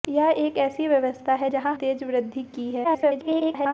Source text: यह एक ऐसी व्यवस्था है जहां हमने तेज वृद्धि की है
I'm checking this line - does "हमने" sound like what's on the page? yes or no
no